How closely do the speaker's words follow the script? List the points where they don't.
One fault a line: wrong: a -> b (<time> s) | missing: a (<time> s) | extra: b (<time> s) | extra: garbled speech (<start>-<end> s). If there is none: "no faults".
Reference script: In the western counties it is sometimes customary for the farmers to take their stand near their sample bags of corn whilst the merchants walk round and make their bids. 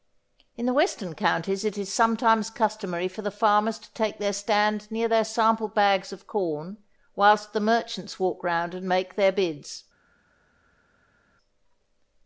no faults